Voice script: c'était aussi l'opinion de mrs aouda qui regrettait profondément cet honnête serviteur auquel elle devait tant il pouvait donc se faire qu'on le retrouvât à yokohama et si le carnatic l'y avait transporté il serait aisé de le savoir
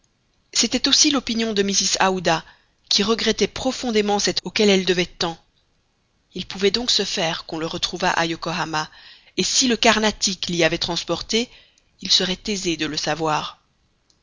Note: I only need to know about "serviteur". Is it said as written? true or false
false